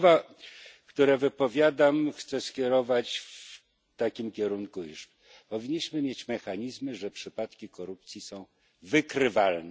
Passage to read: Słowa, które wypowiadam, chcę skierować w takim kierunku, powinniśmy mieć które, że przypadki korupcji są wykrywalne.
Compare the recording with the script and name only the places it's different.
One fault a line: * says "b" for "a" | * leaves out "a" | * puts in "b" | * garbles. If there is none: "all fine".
* puts in "iż"
* says "mechanizmy" for "które"